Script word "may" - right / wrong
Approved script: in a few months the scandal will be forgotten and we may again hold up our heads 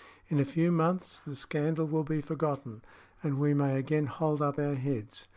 right